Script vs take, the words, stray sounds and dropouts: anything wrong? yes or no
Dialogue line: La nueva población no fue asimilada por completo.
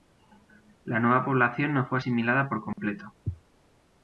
yes